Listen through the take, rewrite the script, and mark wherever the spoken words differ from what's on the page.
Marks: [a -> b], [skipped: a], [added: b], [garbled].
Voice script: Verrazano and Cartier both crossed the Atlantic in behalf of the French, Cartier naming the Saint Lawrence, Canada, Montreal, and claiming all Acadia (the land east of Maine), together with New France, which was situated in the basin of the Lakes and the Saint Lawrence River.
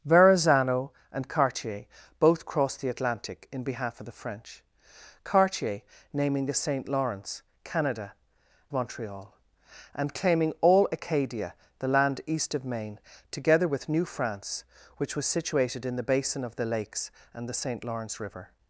Verrazano and Cartier both crossed the Atlantic in behalf of the French, Cartier naming the Saint Lawrence, Canada, Montreal, and claiming all Acadia (the land east of Maine), together with New France, which was situated in the basin of the Lakes and the Saint Lawrence River.